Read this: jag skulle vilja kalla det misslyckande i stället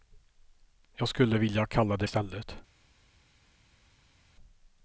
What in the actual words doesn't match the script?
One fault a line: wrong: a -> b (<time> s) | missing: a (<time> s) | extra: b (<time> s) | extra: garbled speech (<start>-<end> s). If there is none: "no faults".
missing: misslyckande (2.1 s)